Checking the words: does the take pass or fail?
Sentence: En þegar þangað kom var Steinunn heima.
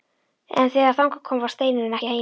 pass